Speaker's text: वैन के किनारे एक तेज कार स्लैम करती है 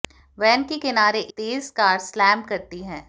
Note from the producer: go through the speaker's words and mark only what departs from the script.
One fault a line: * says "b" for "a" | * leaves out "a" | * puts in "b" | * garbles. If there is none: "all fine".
* leaves out "एक"